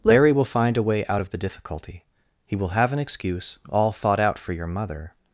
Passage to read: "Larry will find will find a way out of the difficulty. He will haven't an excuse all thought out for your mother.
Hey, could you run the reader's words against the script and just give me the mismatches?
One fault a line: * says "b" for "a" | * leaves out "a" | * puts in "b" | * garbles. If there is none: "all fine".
* leaves out "will find"
* says "have" for "haven't"